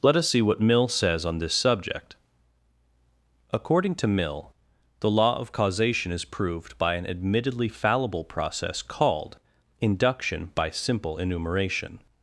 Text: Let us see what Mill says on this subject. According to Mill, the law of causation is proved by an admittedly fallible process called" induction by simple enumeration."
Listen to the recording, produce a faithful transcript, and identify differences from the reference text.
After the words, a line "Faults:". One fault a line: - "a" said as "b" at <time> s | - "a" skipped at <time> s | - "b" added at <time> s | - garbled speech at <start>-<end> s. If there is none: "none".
Let us see what Mill says on this subject. According to Mill, the law of causation is proved by an admittedly fallible process called" induction by simple enumeration."
Faults:
none